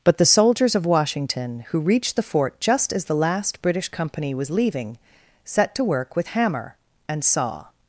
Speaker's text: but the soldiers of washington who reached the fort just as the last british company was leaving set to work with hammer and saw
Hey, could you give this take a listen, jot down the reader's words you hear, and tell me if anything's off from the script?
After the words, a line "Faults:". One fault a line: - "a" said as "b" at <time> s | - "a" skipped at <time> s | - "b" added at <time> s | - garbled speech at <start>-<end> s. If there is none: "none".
but the soldiers of washington who reached the fort just as the last british company was leaving set to work with hammer and saw
Faults:
none